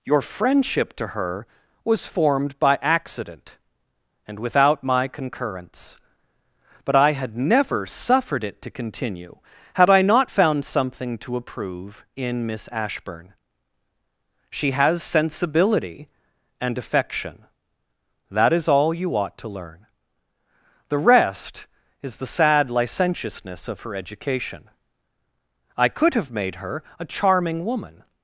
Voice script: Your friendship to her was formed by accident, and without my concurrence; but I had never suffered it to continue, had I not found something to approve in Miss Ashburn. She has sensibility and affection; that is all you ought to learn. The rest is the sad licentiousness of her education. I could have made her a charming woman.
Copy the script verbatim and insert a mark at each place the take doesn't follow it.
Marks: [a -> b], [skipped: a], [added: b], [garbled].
Your friendship to her was formed by accident, and without my concurrence; but I had never suffered it to continue, had I not found something to approve in Miss Ashburn. She has sensibility and affection; that is all you ought to learn. The rest is the sad licentiousness of her education. I could have made her a charming woman.